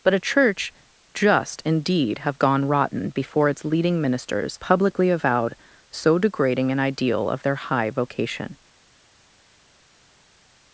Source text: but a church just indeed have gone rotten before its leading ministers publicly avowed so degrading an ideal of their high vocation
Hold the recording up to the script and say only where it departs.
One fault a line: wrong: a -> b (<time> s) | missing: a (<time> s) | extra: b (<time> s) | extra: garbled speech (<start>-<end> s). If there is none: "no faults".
no faults